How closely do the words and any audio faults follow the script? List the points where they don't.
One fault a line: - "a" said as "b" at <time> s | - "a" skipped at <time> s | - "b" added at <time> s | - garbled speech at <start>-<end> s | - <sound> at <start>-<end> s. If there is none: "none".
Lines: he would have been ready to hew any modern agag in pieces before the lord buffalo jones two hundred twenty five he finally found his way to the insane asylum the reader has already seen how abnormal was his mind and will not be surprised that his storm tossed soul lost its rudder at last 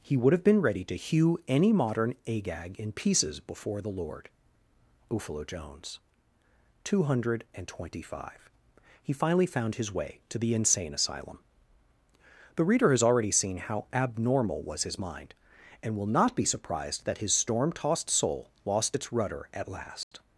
- dropout at 20.0-20.1 s